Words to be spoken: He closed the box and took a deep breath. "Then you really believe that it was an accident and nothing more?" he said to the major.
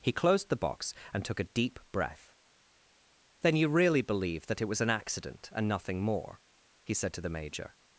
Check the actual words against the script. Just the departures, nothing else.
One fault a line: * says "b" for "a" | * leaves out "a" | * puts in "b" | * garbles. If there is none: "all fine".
all fine